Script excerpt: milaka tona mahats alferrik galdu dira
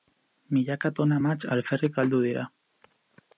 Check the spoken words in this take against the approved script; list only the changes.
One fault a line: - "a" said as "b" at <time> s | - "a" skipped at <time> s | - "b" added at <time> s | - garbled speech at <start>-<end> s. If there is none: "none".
none